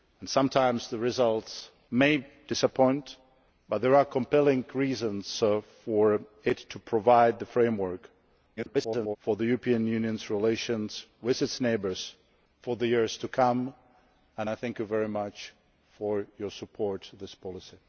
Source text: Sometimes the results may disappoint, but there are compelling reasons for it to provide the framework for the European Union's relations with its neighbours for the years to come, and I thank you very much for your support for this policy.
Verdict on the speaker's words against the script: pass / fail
fail